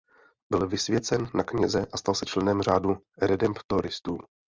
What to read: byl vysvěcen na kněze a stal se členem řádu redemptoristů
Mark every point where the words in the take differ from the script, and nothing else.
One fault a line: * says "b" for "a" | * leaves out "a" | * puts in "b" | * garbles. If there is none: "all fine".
all fine